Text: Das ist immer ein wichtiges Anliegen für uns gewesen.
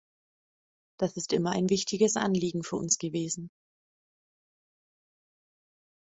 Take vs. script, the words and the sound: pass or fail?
pass